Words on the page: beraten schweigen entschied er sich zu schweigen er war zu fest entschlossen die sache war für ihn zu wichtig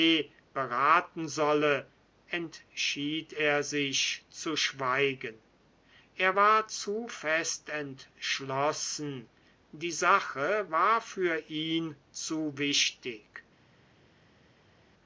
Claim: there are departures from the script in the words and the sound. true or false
true